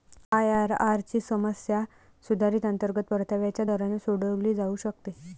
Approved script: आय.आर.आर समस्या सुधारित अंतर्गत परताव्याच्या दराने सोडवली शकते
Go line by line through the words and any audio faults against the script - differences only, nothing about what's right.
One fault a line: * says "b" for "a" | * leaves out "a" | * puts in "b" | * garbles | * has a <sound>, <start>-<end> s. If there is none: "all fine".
* puts in "ची"
* puts in "जाऊ"